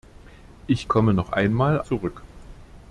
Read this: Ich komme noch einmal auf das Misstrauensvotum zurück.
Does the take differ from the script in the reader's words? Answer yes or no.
yes